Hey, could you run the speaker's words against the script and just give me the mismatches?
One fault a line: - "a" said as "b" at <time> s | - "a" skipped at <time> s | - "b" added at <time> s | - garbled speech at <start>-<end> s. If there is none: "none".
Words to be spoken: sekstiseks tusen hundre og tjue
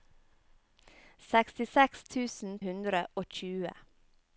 none